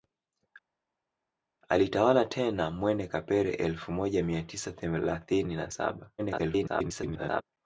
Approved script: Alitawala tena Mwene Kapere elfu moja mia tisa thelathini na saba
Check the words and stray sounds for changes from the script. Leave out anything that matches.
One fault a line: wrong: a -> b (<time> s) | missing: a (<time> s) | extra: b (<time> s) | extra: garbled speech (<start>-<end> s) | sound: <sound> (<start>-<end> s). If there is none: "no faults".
extra: garbled speech (6.2-7.4 s)